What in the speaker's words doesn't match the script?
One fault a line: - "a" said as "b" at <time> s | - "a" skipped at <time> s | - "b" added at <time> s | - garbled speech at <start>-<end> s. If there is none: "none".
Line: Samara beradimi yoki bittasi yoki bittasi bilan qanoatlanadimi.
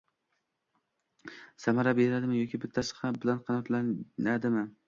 - "yoki bittasi" skipped at 3.0 s